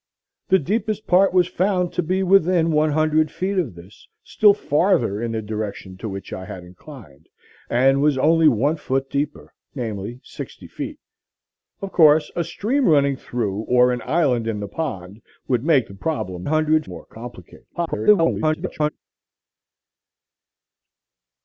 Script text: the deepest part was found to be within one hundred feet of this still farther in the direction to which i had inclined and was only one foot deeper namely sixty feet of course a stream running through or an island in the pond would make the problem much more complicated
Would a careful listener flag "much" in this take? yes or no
yes